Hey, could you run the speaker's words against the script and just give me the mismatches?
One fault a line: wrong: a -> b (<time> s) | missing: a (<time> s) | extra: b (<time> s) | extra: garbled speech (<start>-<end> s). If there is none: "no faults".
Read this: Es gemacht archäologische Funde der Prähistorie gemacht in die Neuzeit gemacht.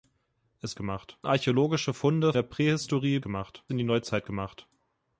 no faults